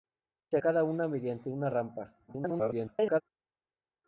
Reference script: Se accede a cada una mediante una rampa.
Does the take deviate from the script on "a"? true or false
true